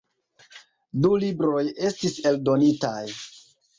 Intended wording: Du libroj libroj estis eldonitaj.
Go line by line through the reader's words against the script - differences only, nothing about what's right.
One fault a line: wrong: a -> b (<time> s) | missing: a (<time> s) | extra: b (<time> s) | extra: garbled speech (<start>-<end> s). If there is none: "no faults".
missing: libroj (1.6 s)